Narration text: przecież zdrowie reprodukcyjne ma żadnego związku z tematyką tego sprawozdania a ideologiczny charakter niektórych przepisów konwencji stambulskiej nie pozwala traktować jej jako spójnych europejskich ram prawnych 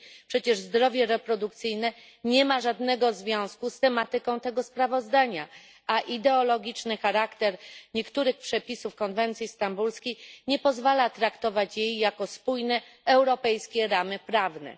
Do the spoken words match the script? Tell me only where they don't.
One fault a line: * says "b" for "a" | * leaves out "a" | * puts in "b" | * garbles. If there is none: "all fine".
* puts in "nie"